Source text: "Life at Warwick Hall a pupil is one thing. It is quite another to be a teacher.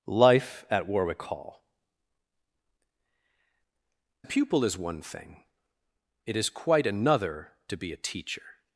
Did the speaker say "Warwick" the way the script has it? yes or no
yes